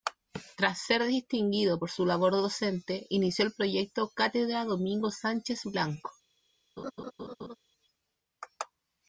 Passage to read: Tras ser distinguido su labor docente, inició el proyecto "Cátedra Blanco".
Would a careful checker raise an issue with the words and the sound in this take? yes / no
yes